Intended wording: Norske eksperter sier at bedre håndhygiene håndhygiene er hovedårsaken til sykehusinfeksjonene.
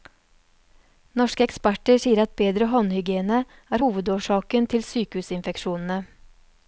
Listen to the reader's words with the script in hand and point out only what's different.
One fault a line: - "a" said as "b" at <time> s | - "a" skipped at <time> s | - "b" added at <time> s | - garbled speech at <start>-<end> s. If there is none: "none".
- "håndhygiene" skipped at 3.4 s